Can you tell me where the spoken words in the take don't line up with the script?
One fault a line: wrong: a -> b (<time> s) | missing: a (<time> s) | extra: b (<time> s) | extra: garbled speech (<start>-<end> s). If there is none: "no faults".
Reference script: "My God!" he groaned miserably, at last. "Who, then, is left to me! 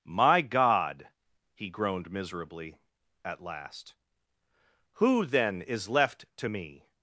no faults